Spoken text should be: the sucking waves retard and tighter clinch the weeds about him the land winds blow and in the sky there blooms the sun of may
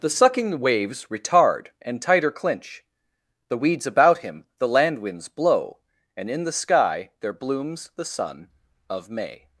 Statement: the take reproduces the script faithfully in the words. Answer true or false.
true